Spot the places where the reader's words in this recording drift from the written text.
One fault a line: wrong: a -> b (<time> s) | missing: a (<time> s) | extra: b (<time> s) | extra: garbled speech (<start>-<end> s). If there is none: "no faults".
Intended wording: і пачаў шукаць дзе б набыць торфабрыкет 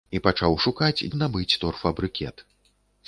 missing: дзе (1.1 s)